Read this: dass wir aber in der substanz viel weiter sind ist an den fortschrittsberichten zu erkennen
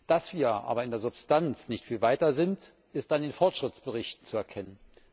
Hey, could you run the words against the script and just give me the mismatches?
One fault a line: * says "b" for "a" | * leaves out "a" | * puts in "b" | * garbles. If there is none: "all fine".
* puts in "nicht"